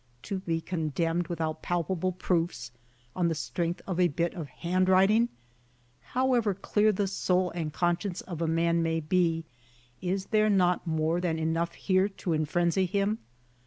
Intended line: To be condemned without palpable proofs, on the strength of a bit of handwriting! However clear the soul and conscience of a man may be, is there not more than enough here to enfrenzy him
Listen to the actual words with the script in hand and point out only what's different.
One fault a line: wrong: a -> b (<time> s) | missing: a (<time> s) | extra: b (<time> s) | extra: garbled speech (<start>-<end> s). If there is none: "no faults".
no faults